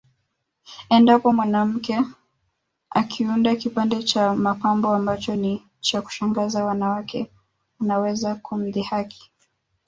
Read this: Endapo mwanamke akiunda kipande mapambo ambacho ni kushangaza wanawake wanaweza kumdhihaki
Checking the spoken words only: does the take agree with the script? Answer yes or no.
no